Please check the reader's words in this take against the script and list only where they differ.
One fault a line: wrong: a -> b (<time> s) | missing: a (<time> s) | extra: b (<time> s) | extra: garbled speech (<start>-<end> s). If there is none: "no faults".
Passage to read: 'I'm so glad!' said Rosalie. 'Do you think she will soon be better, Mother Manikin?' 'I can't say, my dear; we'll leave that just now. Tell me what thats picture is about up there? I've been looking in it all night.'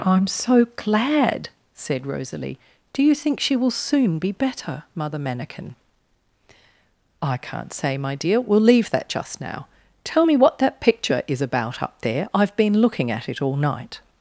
wrong: thats -> that (10.6 s)
wrong: in -> at (13.1 s)